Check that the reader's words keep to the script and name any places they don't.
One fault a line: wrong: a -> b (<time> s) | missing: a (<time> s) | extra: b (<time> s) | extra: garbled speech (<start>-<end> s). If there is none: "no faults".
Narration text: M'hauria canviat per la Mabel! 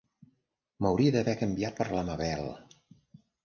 extra: d'haver (1.2 s)